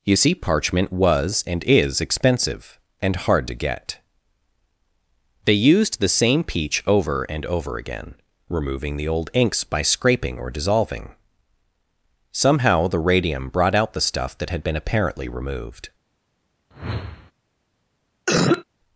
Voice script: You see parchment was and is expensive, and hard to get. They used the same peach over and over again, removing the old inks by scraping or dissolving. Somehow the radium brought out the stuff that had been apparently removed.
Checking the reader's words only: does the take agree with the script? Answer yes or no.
yes